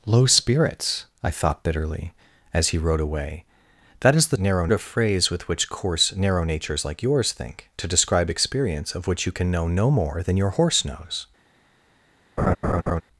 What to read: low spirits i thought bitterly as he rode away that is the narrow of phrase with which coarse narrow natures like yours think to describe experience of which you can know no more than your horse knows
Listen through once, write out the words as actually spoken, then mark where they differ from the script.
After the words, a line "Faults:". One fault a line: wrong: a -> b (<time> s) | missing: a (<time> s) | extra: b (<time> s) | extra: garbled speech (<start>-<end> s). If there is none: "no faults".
low spirits i thought bitterly as he rode away that is the narrow of phrase with which coarse narrow natures like yours think to describe experience of which you can know no more than your horse knows
Faults:
no faults